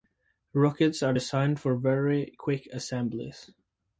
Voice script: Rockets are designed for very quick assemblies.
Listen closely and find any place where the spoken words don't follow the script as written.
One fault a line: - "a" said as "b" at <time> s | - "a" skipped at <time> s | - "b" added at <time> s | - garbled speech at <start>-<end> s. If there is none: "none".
none